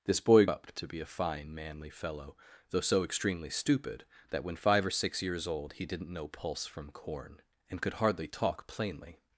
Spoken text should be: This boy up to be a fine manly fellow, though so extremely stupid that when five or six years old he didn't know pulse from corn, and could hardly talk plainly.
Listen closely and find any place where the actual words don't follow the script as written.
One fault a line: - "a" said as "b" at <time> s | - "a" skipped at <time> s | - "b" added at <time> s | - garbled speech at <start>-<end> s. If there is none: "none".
none